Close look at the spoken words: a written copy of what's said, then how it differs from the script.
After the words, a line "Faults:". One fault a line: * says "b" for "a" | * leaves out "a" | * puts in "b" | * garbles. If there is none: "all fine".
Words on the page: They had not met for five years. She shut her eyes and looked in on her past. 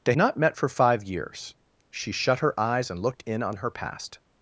They not met for five years. She shut her eyes and looked in on her past.
Faults:
* leaves out "had"